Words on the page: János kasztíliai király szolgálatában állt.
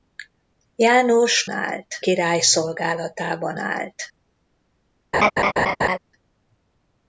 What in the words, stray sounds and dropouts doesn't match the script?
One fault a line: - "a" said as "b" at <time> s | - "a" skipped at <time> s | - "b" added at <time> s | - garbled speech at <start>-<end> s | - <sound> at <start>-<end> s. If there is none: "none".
- "kasztíliai" said as "állt" at 1.5 s
- laugh at 5.1-6.0 s